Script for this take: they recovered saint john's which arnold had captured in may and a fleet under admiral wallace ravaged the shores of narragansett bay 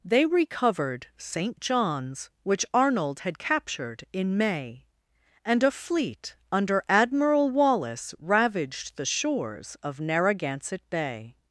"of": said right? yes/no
yes